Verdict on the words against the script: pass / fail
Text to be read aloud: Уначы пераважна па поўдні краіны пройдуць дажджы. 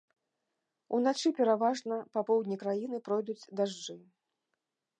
pass